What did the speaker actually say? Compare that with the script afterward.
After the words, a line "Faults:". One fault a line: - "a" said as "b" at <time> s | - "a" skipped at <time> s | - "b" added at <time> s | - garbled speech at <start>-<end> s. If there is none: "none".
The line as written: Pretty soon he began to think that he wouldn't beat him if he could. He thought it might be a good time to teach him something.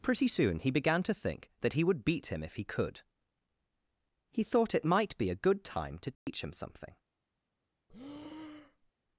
Pretty soon he began to think that he would beat him if he could. He thought it might be a good time to teach him something.
Faults:
- "wouldn't" said as "would" at 1.8 s